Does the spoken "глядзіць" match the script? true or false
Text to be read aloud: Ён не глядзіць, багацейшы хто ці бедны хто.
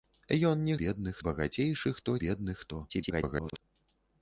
false